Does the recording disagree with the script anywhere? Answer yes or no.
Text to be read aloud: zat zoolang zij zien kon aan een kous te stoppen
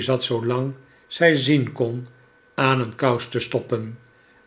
no